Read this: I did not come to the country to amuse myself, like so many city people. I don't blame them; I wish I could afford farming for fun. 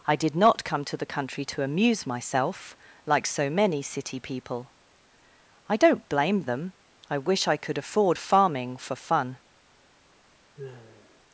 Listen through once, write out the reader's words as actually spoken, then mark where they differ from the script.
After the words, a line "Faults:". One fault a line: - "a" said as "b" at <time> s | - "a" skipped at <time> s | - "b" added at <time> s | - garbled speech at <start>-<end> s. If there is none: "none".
I did not come to the country to amuse myself, like so many city people. I don't blame them; I wish I could afford farming for fun.
Faults:
none